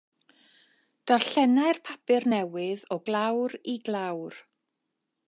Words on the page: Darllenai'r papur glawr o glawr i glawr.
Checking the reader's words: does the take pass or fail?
fail